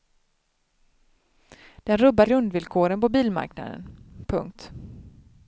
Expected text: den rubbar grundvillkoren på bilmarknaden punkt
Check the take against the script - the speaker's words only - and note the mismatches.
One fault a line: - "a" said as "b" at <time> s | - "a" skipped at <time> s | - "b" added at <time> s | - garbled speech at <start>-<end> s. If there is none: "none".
none